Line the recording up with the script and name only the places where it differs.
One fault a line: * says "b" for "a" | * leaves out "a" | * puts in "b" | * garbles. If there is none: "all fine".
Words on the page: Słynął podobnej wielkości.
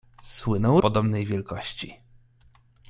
all fine